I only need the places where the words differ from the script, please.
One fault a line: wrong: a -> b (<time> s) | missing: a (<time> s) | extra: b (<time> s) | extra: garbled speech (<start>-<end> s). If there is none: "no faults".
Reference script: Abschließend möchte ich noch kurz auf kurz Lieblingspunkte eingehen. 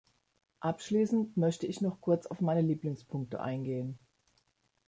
wrong: kurz -> meine (2.4 s)